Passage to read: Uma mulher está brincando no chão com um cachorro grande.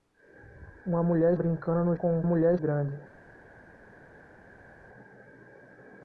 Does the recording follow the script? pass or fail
fail